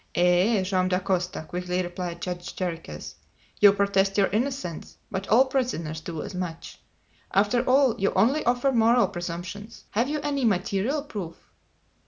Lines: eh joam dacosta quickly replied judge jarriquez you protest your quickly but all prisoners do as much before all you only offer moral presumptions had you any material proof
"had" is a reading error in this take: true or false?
true